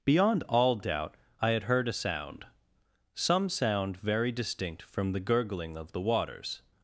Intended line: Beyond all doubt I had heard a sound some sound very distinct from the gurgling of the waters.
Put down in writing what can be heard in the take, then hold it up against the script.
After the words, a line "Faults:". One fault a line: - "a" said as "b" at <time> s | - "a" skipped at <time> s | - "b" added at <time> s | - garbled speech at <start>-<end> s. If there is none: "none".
Beyond all doubt I had heard a sound some sound very distinct from the gurgling of the waters.
Faults:
none